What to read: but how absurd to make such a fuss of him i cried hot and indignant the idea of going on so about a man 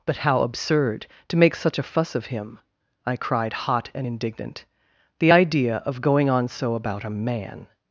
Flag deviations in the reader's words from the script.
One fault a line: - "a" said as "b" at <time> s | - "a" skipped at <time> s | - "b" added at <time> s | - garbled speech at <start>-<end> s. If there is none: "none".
none